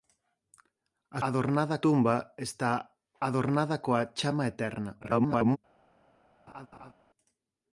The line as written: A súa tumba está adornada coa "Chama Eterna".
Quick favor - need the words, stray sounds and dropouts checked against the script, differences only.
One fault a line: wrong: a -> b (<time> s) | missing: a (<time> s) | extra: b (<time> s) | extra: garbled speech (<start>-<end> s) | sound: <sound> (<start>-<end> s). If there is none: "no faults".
wrong: súa -> adornada (1.3 s)
extra: garbled speech (5.0-5.6 s)
sound: laugh (6.5-6.9 s)